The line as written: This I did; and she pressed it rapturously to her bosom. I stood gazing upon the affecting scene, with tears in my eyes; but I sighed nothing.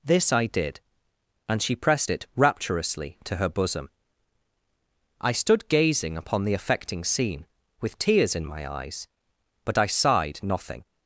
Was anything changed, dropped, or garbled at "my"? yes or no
no